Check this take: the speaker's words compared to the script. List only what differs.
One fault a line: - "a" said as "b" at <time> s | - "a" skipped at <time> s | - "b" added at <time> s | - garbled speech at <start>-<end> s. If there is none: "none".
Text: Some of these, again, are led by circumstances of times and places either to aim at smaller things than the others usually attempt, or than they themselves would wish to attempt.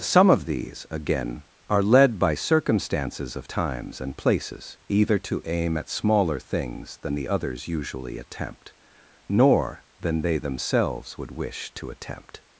- "or" said as "nor" at 9.3 s